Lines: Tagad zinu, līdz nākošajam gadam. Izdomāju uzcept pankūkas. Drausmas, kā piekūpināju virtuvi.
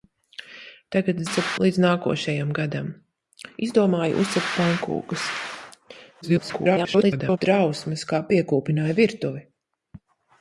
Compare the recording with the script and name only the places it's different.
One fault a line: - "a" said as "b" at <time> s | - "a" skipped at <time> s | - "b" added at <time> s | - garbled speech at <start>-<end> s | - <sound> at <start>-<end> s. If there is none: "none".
- "zinu" said as "uzcept" at 1.3 s
- garbled speech at 6.2-7.4 s